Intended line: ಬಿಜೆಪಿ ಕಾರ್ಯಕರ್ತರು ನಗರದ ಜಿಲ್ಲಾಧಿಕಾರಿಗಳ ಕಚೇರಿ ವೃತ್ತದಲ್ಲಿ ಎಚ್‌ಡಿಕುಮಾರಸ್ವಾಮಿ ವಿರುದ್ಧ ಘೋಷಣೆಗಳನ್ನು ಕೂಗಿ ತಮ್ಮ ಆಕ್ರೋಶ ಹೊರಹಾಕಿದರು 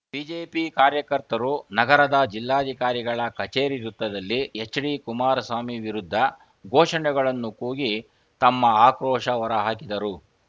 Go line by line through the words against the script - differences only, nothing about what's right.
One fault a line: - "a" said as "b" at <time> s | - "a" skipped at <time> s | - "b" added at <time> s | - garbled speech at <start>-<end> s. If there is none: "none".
none